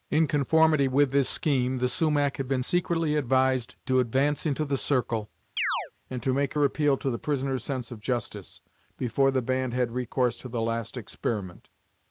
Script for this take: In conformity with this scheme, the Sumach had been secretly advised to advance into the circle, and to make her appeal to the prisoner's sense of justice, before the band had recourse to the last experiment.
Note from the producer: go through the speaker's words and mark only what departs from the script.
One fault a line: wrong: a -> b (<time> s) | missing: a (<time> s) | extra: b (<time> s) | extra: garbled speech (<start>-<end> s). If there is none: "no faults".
no faults